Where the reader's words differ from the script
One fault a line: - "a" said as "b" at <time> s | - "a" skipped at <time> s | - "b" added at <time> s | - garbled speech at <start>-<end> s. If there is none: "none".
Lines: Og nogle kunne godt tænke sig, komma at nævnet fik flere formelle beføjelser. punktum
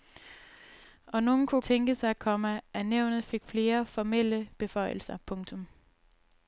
- "godt" skipped at 1.6 s